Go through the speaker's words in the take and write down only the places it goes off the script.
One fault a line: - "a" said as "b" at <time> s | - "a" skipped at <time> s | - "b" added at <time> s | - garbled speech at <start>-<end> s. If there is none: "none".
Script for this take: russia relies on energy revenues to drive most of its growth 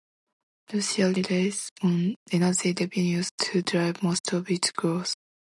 none